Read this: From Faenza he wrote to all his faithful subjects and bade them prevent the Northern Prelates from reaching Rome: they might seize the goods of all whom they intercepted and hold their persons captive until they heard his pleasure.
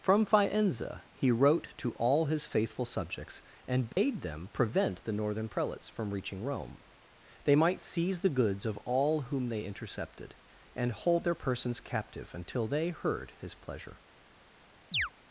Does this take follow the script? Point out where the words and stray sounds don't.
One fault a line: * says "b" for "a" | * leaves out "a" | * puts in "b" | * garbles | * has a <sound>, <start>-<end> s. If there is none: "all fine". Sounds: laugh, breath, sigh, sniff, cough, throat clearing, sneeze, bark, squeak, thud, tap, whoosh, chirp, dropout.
* has a dropout, 3.9-4.0 s
* has a chirp, 14.9-15.1 s